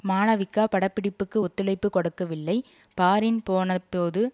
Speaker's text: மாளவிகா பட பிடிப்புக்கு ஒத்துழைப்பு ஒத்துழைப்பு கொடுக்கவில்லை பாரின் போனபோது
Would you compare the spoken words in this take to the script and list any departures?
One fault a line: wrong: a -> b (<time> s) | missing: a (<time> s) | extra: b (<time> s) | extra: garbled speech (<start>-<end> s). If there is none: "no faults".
missing: ஒத்துழைப்பு (1.9 s)